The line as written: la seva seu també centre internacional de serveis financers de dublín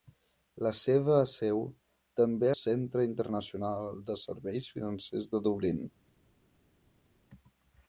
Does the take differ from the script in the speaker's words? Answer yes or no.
no